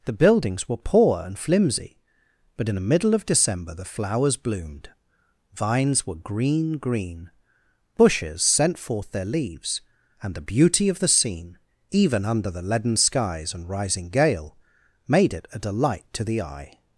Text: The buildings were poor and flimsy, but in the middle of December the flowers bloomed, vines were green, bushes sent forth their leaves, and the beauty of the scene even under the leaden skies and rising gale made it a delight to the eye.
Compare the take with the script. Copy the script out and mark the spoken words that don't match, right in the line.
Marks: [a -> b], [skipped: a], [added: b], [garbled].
The buildings were poor and flimsy, but in the middle of December the flowers bloomed, vines were green, [added: green] bushes sent forth their leaves, and the beauty of the scene even under the leaden skies and rising gale made it a delight to the eye.